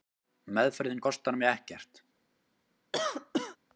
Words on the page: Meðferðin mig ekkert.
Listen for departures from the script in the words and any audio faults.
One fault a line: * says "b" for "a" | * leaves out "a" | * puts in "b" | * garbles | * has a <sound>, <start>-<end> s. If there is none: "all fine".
* puts in "kostar"
* has a cough, 2.9-3.6 s